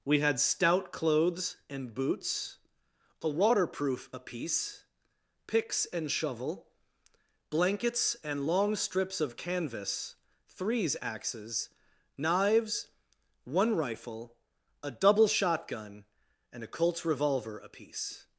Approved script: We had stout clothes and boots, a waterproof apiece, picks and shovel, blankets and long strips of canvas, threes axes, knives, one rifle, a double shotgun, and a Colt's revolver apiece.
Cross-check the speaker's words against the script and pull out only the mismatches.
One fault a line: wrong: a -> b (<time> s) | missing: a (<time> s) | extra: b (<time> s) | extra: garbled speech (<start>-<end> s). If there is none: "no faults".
no faults